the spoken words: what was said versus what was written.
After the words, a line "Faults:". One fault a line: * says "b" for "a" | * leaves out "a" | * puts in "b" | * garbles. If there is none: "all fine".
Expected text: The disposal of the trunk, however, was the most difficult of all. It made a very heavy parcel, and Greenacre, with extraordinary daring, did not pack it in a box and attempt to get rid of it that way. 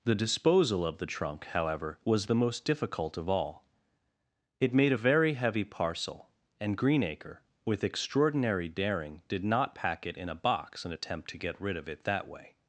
The disposal of the trunk, however, was the most difficult of all. It made a very heavy parcel, and Greenacre, with extraordinary daring, did not pack it in a box and attempt to get rid of it that way.
Faults:
all fine